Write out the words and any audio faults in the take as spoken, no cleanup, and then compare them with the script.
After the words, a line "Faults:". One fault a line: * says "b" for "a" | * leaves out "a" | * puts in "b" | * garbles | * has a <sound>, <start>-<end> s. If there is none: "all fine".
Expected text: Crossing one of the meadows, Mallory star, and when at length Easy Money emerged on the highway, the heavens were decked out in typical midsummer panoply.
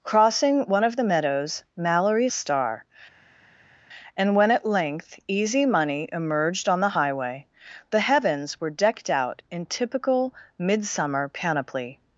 Crossing one of the meadows, Mallory star, and when at length Easy Money emerged on the highway, the heavens were decked out in typical midsummer panoply.
Faults:
all fine